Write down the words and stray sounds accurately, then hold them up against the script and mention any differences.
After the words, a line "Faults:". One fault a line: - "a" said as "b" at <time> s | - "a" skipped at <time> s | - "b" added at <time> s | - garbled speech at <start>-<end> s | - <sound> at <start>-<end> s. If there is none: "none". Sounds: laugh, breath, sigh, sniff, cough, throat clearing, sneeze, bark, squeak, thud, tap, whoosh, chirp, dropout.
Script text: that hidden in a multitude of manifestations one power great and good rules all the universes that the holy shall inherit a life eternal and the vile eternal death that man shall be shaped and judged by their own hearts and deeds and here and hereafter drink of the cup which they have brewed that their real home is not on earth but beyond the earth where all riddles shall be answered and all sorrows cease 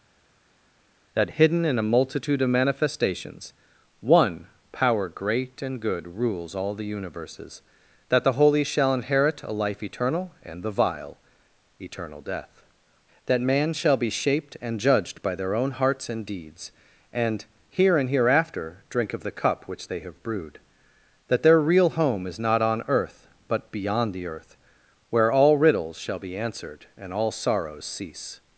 that hidden in a multitude of manifestations one power great and good rules all the universes that the holy shall inherit a life eternal and the vile eternal death that man shall be shaped and judged by their own hearts and deeds and here and hereafter drink of the cup which they have brewed that their real home is not on earth but beyond the earth where all riddles shall be answered and all sorrows cease
Faults:
none